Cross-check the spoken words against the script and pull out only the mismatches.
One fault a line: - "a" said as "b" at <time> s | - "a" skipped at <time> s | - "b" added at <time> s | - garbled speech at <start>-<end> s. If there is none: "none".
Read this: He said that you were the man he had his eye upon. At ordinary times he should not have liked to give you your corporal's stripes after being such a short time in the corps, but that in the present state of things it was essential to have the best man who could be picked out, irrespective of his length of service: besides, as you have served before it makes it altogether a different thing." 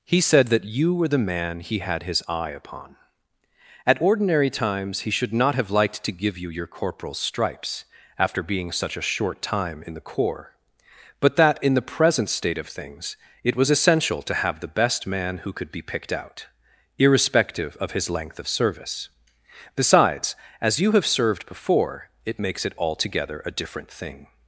none